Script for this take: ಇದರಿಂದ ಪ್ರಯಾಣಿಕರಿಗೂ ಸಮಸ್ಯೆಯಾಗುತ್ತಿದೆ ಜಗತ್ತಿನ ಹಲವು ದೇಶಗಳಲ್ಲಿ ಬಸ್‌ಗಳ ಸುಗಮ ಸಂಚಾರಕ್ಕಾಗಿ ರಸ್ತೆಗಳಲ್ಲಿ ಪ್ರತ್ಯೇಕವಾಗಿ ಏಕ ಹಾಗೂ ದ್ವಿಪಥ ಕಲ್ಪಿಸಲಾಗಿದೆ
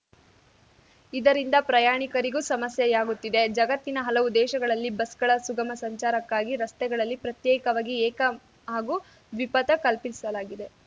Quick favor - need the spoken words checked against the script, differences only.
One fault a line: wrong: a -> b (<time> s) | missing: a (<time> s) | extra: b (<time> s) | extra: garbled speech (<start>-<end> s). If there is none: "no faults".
no faults